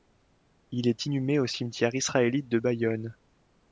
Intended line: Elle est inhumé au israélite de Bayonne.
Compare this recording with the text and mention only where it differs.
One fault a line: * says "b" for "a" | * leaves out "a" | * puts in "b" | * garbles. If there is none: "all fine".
* says "Il" for "Elle"
* puts in "cimetière"